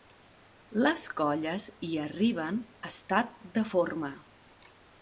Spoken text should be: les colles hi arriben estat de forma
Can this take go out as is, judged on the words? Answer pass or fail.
pass